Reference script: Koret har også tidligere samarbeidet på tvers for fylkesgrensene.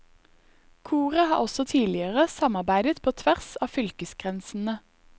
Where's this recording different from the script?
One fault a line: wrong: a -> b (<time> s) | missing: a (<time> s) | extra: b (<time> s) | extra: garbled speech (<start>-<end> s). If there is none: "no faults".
wrong: for -> av (3.6 s)